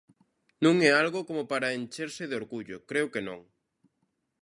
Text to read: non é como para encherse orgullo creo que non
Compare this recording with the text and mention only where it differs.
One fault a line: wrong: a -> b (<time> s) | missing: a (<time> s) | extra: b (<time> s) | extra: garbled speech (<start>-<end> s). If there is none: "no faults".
extra: algo (1.0 s)
extra: de (2.3 s)